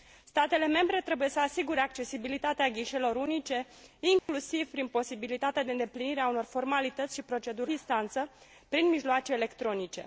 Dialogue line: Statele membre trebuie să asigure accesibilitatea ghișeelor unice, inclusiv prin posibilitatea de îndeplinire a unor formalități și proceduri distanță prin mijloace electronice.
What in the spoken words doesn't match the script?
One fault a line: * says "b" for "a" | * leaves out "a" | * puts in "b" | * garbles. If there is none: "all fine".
all fine